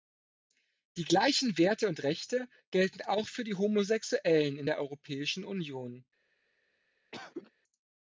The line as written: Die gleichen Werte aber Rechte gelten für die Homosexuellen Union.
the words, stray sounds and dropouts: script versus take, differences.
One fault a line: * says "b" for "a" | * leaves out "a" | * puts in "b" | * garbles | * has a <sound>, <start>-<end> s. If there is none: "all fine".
* says "und" for "aber"
* puts in "auch"
* puts in "in der Europäischen"
* has a cough, 7.1-7.5 s